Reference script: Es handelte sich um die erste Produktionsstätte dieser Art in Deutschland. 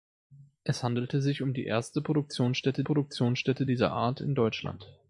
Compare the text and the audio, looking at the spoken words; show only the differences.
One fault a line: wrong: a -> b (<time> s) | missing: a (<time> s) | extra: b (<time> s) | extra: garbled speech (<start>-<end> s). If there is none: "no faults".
extra: Produktionsstätte (2.8 s)